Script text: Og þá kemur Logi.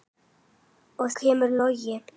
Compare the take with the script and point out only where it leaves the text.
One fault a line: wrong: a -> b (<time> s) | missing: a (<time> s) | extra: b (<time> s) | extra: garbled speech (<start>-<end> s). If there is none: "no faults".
missing: þá (1.1 s)